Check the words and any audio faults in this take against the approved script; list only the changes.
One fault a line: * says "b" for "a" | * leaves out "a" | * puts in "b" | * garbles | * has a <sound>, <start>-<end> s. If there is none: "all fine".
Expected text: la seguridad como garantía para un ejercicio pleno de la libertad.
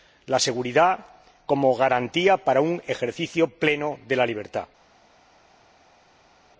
all fine